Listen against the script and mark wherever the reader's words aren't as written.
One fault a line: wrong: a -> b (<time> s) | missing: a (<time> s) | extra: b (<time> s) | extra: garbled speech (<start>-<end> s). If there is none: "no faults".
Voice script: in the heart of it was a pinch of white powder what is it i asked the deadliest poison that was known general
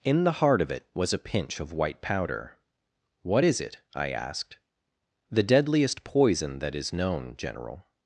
wrong: was -> is (6.7 s)